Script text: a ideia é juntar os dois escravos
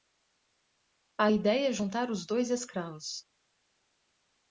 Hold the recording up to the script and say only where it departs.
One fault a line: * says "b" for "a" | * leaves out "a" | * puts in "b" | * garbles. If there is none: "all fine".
all fine